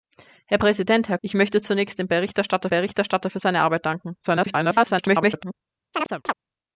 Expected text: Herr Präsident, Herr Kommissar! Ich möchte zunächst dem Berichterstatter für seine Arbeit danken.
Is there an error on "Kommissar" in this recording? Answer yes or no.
yes